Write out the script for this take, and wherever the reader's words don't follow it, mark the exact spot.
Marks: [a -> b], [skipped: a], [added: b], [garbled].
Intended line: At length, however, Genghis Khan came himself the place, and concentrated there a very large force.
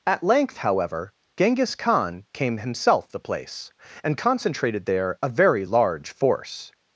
At length, however, Genghis Khan came himself the place, and concentrated there a very large force.